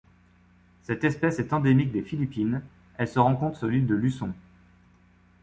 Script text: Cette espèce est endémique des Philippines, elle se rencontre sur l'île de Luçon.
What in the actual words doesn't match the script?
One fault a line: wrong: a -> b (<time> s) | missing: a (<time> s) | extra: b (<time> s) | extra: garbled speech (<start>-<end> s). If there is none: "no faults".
no faults